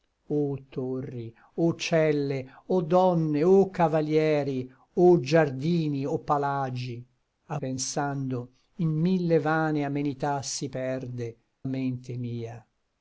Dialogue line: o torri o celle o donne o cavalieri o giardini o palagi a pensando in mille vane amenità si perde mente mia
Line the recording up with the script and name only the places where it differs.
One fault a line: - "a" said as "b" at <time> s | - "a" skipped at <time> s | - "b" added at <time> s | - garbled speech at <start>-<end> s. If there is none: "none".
none